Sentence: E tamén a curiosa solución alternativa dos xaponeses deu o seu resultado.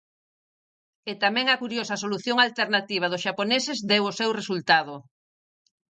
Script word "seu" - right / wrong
right